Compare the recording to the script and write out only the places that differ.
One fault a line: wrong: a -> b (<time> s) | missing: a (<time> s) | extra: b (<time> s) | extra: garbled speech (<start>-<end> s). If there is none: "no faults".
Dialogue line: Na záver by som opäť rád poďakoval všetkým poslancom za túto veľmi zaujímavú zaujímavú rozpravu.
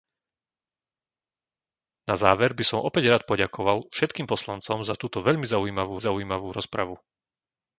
no faults